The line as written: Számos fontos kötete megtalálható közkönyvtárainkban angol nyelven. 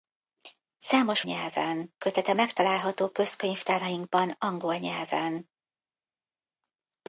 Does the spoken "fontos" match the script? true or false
false